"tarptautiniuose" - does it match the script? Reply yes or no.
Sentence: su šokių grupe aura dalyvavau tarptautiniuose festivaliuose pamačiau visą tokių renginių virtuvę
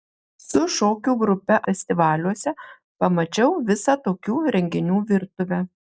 no